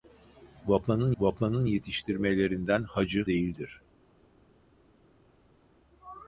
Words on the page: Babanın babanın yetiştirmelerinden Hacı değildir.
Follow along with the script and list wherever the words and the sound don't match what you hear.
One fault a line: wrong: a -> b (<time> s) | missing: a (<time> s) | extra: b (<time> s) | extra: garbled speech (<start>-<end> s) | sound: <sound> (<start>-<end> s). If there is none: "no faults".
no faults